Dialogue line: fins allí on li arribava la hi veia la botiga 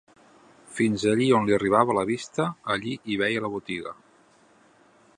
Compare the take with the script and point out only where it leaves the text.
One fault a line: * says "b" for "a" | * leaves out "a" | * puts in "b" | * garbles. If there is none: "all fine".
* puts in "vista allí"